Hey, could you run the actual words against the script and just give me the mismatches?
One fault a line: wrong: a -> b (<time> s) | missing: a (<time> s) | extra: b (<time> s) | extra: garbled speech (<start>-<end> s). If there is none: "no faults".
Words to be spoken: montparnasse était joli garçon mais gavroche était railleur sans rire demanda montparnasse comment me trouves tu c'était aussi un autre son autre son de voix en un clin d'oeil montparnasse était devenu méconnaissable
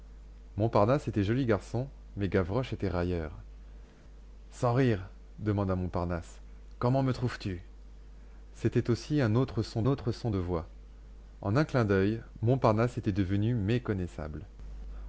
no faults